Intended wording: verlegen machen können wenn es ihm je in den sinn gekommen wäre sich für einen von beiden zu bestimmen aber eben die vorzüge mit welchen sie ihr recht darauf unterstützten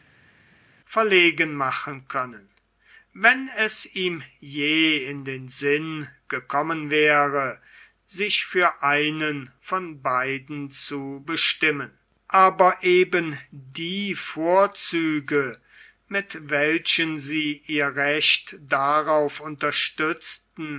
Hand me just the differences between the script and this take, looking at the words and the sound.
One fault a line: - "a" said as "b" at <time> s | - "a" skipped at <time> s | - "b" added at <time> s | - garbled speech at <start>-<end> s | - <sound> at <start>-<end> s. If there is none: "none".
none